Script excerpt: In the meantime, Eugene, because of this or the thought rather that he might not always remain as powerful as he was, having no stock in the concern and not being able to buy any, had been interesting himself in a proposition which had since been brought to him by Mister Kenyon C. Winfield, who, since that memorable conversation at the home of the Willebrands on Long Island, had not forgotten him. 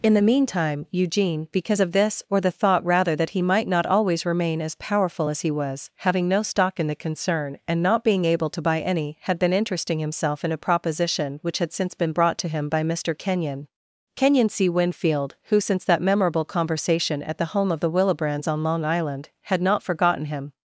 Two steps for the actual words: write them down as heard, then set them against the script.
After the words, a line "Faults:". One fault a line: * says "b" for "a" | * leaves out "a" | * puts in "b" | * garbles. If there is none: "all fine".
In the meantime, Eugene, because of this or the thought rather that he might not always remain as powerful as he was, having no stock in the concern and not being able to buy any, had been interesting himself in a proposition which had since been brought to him by Mister Kenyon Kenyon C. Winfield, who, since that memorable conversation at the home of the Willebrands on Long Island, had not forgotten him.
Faults:
* puts in "Kenyon"